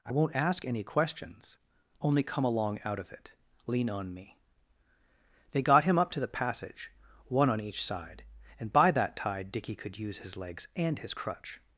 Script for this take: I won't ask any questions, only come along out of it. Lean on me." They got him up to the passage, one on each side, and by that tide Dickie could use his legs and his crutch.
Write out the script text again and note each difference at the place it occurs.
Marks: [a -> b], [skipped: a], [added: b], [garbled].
I won't ask any questions, only come along out of it. Lean on me." They got him up to the passage, one on each side, and by that tide Dickie could use his legs and his crutch.